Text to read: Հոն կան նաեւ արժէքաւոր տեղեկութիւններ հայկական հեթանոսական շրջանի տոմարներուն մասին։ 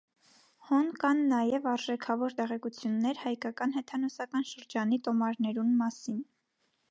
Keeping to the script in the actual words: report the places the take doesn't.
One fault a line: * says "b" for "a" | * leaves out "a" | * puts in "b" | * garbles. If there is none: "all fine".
all fine